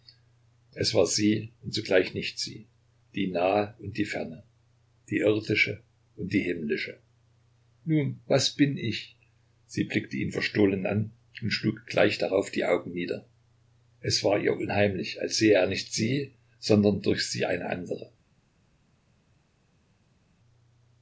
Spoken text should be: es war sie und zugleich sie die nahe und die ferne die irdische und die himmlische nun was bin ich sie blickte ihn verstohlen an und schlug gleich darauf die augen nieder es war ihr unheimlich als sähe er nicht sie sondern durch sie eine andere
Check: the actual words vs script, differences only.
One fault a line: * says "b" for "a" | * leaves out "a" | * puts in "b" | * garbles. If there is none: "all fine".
* puts in "nicht"